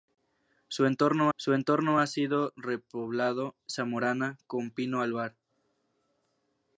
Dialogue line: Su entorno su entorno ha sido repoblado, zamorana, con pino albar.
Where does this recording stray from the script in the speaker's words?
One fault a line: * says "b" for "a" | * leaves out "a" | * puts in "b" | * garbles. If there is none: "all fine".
all fine